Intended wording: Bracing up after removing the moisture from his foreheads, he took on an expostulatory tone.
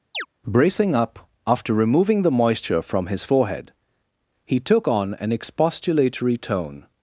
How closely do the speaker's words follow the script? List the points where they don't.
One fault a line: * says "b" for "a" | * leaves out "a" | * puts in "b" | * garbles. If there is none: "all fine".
* says "forehead" for "foreheads"